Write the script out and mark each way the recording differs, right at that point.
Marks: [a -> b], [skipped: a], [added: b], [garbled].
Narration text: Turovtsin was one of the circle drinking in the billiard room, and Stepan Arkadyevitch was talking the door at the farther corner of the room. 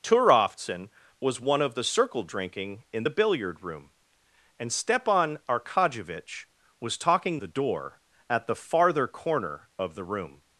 Turovtsin was one of the circle drinking in the billiard room, and Stepan Arkadyevitch was talking the door at the farther corner of the room.